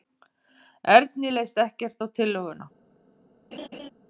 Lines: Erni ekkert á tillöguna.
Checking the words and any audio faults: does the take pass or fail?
fail